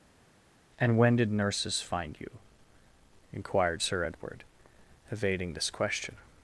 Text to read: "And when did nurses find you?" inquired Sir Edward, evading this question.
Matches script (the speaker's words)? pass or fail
pass